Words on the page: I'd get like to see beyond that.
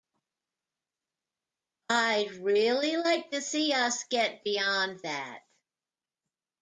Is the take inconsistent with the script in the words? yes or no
yes